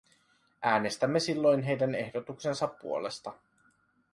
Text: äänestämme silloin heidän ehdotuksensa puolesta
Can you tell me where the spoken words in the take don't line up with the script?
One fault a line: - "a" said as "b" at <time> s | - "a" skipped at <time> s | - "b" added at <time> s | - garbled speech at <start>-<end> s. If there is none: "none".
none